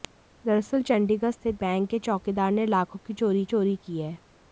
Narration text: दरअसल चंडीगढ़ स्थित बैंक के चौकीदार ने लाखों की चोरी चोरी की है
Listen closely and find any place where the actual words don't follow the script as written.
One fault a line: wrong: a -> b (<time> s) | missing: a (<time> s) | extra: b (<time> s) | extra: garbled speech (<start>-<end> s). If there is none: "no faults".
no faults